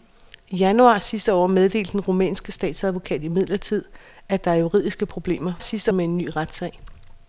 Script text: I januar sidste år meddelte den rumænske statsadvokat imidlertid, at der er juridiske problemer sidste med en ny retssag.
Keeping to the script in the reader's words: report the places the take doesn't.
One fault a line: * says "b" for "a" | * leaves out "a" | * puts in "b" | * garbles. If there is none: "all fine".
all fine